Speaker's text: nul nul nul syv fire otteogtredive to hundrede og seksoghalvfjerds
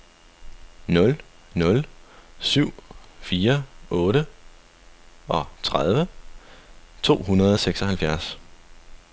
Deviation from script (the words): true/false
true